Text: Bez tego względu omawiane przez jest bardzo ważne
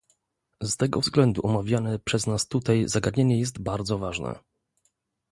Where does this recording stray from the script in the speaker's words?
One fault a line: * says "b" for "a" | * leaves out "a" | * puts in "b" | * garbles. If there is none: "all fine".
* says "Z" for "Bez"
* puts in "nas tutaj zagadnienie"